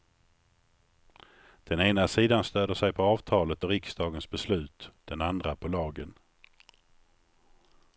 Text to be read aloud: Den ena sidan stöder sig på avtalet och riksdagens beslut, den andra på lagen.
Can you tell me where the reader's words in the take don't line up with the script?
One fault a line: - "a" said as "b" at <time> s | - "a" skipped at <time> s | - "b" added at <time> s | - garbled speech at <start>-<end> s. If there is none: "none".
none